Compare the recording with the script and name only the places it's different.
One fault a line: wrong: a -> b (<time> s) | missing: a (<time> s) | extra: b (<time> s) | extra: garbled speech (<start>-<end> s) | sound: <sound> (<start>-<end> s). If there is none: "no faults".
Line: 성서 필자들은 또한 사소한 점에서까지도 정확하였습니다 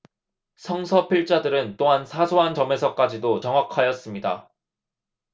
no faults